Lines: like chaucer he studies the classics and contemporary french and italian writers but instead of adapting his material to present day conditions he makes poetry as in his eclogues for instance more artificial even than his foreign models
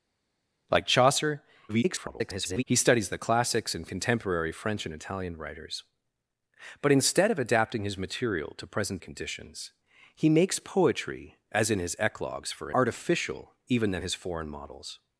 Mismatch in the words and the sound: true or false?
true